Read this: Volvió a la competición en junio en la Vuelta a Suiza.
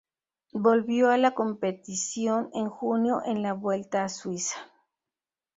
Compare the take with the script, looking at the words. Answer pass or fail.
pass